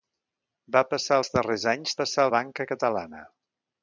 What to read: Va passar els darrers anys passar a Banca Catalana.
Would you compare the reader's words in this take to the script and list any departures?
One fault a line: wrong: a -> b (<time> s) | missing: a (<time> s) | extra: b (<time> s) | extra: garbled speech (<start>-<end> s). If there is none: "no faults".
no faults